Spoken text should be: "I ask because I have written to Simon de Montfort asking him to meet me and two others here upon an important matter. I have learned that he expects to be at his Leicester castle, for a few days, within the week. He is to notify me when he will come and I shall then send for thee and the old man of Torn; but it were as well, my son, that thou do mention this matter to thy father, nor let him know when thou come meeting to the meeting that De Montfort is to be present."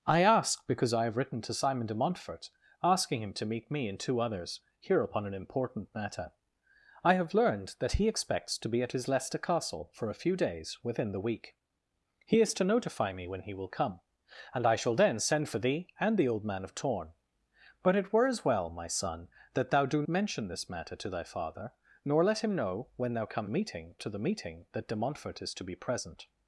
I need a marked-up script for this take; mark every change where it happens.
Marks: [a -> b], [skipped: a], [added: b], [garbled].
"I ask because I have written to Simon de Montfort asking him to meet me and two others here upon an important matter. I have learned that he expects to be at his Leicester castle, for a few days, within the week. He is to notify me when he will come and I shall then send for thee and the old man of Torn; but it were as well, my son, that thou do mention this matter to thy father, nor let him know when thou come meeting to the meeting that De Montfort is to be present."